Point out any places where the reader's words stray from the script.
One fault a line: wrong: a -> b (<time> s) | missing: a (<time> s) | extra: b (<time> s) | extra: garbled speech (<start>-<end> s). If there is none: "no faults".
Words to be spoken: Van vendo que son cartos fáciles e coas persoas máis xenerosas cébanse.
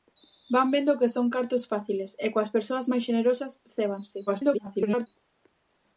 extra: garbled speech (4.3-5.1 s)